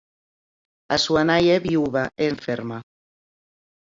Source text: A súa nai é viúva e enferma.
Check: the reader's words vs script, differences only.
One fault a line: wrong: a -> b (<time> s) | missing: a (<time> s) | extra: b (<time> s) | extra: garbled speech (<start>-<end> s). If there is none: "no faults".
no faults